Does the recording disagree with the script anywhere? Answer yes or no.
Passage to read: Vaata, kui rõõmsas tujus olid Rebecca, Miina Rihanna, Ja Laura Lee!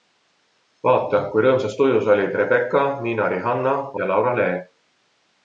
no